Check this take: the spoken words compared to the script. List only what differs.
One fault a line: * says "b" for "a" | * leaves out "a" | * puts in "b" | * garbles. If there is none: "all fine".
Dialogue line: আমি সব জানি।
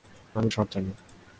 all fine